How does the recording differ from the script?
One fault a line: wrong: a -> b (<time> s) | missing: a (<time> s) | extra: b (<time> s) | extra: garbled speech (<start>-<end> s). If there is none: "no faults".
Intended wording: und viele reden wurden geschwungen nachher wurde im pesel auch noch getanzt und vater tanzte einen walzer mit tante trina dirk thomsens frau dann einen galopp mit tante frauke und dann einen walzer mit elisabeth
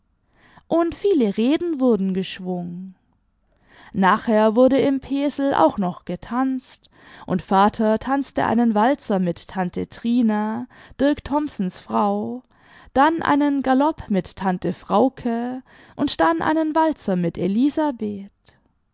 no faults